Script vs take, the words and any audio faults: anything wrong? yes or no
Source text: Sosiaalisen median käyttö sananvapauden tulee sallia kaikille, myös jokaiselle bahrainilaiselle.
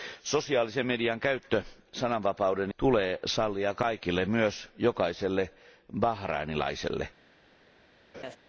yes